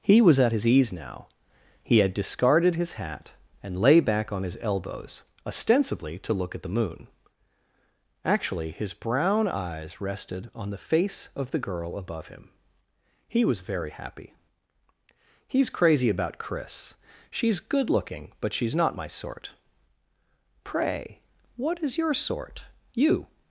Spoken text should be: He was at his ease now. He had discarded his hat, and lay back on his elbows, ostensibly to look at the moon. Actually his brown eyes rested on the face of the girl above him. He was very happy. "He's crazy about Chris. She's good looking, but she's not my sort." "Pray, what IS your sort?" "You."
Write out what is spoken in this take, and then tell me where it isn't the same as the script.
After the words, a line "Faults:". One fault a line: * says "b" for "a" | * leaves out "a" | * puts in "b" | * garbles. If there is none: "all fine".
He was at his ease now. He had discarded his hat, and lay back on his elbows, ostensibly to look at the moon. Actually his brown eyes rested on the face of the girl above him. He was very happy. "He's crazy about Chris. She's good looking, but she's not my sort." "Pray, what IS your sort?" "You."
Faults:
all fine